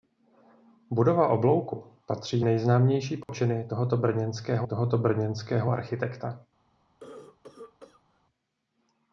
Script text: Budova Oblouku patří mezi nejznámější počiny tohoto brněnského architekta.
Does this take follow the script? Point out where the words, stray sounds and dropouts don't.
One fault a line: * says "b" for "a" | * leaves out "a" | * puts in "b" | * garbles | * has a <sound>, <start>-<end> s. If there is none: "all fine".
* leaves out "mezi"
* has a dropout, 3.2-3.3 s
* puts in "tohoto brněnského"
* has a cough, 7.0-8.2 s